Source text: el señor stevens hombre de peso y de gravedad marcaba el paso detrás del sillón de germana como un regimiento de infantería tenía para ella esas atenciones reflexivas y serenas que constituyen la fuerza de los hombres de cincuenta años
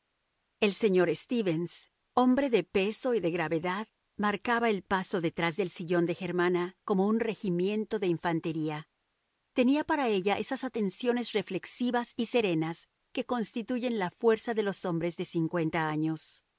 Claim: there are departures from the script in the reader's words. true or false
false